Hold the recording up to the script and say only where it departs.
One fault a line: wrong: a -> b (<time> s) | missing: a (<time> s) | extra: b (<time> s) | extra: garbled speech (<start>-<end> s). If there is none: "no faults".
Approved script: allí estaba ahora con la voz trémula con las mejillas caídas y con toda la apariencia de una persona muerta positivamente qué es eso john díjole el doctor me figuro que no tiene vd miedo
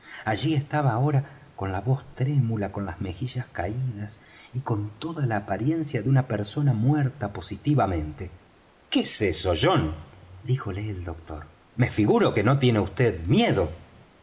no faults